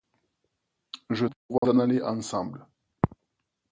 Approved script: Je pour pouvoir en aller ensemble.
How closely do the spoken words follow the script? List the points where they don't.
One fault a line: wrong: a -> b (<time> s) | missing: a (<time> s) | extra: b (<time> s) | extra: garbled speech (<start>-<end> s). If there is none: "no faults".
no faults